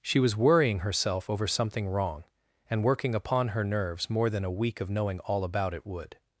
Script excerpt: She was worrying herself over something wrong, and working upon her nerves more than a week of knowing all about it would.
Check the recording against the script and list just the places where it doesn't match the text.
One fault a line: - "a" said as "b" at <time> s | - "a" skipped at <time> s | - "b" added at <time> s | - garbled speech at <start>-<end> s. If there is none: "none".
none